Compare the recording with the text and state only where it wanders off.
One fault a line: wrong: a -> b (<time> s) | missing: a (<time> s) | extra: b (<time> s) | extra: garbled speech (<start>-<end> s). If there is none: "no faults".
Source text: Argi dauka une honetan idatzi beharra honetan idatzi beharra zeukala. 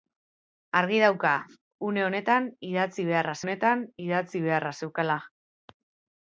no faults